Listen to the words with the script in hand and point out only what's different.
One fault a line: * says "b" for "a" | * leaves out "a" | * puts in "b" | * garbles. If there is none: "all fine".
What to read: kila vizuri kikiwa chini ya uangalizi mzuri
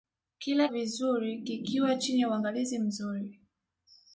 all fine